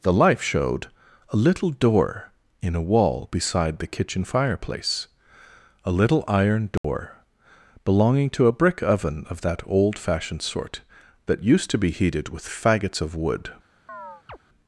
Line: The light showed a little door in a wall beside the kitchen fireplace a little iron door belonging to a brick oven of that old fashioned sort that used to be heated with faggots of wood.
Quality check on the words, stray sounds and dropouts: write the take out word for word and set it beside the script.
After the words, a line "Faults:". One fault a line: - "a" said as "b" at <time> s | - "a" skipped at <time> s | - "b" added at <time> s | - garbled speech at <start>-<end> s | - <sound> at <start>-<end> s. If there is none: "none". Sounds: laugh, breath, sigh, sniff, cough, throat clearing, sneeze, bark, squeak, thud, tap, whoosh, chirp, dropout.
The life showed a little door in a wall beside the kitchen fireplace a little iron door belonging to a brick oven of that old fashioned sort that used to be heated with faggots of wood.
Faults:
- "light" said as "life" at 0.1 s
- dropout at 6.8-6.8 s
- chirp at 13.9-14.4 s